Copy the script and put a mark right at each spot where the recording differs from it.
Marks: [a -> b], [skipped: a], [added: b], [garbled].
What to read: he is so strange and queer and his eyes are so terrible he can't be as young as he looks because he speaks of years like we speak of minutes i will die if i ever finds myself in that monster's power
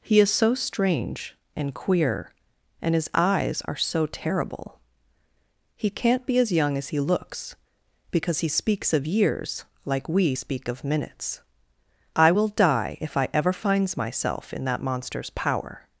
he is so strange and queer and his eyes are so terrible he can't be as young as he looks because he speaks of years like we speak of minutes i will die if i ever finds myself in that monster's power